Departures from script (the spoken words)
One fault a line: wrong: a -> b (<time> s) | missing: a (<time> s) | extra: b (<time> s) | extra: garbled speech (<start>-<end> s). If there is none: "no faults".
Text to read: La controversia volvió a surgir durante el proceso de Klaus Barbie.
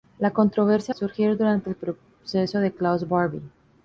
missing: volvió (0.9 s)